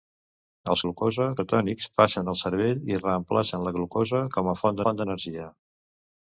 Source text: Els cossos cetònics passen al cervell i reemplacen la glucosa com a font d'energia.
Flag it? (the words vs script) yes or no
yes